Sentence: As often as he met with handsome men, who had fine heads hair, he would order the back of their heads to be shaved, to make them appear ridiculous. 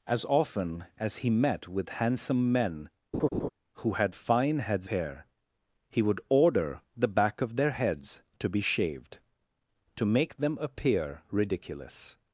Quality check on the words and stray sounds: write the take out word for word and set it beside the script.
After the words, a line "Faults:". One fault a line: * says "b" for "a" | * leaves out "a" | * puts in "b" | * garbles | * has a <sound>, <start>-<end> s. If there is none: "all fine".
As often as he met with handsome men, who had fine heads hair, he would order the back of their heads to be shaved, to make them appear ridiculous.
Faults:
* has a laugh, 3.1-3.5 s